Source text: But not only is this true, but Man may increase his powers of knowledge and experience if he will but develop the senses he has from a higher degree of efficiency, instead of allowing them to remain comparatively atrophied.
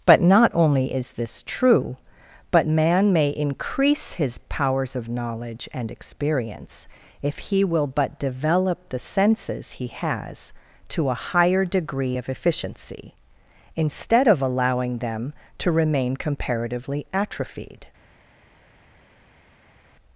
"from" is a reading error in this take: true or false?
true